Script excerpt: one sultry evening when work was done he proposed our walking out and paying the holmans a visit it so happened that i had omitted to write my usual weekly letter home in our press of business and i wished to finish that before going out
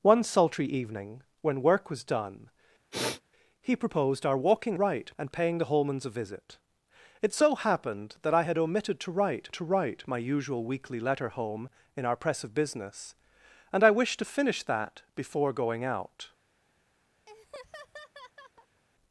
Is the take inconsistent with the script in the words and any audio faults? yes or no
yes